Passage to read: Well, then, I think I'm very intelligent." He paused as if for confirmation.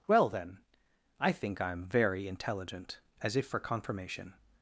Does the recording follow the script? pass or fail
fail